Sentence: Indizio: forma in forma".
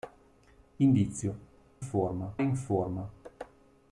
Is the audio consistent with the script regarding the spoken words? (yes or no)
yes